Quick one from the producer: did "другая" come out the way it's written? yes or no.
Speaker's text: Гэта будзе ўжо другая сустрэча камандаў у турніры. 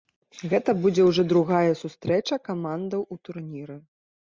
yes